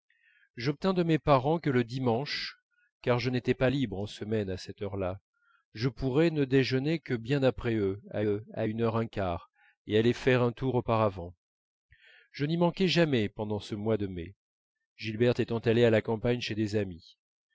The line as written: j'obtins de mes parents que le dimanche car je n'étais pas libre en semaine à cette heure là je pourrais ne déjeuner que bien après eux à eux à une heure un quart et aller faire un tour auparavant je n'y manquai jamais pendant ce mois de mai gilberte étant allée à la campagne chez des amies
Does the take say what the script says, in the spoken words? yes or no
yes